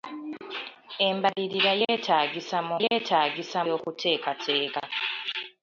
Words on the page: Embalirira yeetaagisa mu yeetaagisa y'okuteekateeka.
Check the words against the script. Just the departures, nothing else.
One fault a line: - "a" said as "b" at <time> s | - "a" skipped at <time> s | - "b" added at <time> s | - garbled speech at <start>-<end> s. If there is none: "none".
none